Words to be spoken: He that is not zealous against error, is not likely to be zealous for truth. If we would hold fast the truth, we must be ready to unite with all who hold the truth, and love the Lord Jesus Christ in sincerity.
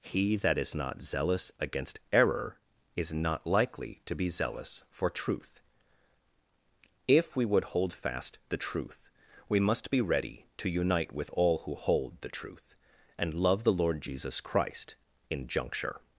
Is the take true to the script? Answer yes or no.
no